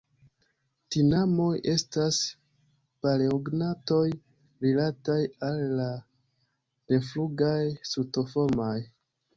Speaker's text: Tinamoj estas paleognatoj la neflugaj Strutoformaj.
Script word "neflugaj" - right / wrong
right